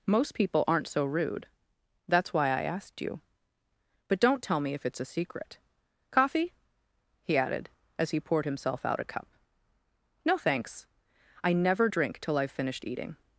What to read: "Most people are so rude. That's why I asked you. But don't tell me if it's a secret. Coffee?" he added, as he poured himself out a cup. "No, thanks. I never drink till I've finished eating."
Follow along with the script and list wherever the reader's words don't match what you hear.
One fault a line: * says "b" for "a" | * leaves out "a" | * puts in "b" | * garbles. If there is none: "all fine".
* says "aren't" for "are"